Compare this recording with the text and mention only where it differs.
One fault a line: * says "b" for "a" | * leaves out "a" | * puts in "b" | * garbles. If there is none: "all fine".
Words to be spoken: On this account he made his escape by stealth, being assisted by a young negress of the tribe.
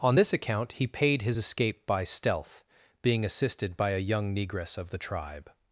* says "paid" for "made"